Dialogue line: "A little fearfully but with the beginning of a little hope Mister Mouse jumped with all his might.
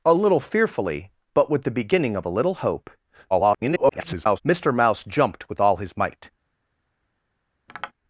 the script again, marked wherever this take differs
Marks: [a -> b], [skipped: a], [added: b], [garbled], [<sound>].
"A little fearfully but with the beginning of a little hope [garbled] Mister Mouse jumped with all his might. [tap]